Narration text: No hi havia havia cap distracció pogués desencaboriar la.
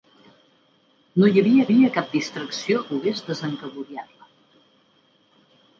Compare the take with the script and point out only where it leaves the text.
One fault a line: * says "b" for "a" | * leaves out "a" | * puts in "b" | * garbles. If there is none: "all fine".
all fine